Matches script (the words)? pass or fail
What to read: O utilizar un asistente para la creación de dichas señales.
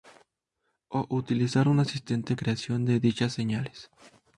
fail